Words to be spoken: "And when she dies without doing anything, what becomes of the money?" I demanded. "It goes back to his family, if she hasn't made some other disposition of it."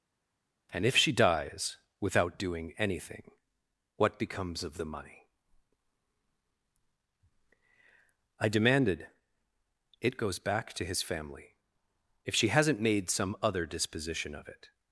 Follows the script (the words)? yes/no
no